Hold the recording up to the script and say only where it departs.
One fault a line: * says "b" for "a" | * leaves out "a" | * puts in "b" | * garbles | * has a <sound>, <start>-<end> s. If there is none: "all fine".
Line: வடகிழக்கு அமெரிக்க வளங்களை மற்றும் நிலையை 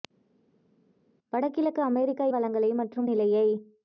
all fine